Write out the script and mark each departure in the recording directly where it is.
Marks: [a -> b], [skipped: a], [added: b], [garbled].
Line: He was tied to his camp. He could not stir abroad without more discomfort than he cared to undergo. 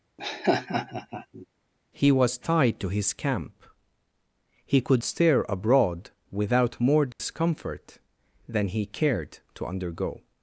He was tied to his camp. He could [skipped: not] stir abroad without more discomfort than he cared to undergo.